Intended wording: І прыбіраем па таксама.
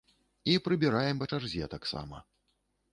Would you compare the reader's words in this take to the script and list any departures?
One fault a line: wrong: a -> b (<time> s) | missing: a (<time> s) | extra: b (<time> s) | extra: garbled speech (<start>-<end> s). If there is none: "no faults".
extra: чарзе (1.3 s)